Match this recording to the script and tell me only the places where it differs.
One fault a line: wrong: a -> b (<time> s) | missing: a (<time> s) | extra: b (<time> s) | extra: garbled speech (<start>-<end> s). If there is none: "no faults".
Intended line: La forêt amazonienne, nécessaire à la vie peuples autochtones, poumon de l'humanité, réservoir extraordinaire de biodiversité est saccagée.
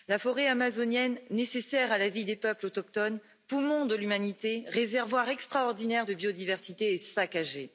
extra: des (2.2 s)